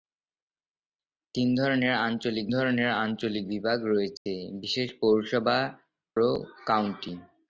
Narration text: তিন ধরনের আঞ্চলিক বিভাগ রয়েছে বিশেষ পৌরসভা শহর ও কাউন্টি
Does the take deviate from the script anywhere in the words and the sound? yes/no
yes